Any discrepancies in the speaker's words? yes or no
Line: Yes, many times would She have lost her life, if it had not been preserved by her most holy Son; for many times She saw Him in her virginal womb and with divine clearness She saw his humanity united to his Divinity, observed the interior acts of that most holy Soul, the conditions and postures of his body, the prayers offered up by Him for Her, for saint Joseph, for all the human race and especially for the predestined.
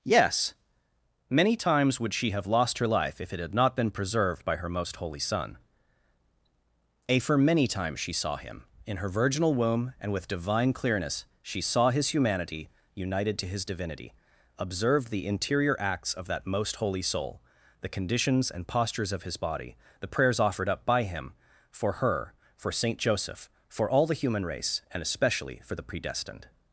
yes